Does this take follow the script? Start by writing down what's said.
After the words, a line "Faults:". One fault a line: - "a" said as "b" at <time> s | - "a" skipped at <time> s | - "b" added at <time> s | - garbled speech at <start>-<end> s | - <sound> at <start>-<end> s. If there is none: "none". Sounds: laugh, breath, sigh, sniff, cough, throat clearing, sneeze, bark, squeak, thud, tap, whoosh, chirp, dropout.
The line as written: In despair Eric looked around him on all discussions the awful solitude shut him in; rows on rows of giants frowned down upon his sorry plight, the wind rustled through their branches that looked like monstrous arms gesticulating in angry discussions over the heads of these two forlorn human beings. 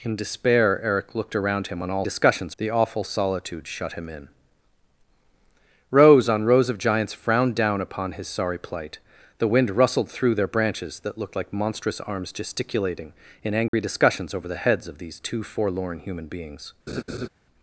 In despair Eric looked around him on all discussions the awful solitude shut him in; rows on rows of giants frowned down upon his sorry plight, the wind rustled through their branches that looked like monstrous arms gesticulating in angry discussions over the heads of these two forlorn human beings.
Faults:
- dropout at 13.7-13.7 s
- laugh at 16.9-17.3 s